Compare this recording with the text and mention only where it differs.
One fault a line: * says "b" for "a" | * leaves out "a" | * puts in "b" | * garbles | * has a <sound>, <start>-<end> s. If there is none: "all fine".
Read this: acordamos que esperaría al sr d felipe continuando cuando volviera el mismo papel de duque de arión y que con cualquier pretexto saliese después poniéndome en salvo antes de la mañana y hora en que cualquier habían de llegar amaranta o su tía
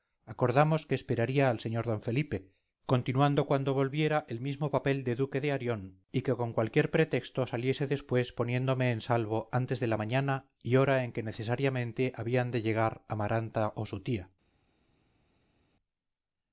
* says "necesariamente" for "cualquier"